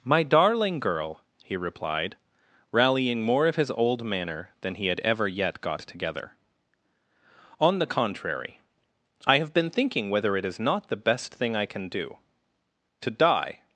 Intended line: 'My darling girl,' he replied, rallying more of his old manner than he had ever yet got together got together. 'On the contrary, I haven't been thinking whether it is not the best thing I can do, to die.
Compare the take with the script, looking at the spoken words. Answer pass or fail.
fail